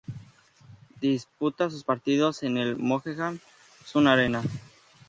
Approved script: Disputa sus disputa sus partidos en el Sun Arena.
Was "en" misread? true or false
false